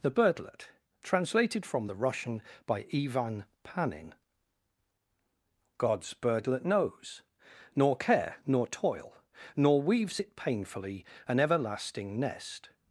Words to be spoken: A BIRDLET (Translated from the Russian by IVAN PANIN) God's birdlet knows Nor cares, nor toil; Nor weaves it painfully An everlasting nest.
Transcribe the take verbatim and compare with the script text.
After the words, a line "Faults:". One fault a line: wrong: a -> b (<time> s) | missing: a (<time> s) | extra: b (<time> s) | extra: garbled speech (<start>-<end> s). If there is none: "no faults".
THE BIRDLET (Translated from the Russian by IVAN PANIN) God's birdlet knows Nor care, nor toil; Nor weaves it painfully An everlasting nest.
Faults:
wrong: A -> THE (0.0 s)
wrong: cares -> care (8.0 s)